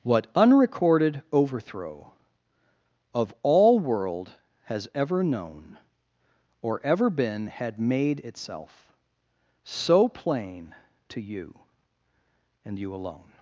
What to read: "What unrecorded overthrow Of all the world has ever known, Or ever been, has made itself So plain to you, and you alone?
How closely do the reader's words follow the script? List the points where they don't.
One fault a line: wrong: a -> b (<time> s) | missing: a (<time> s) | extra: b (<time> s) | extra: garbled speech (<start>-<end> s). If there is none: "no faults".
missing: the (3.8 s)
wrong: has -> had (7.5 s)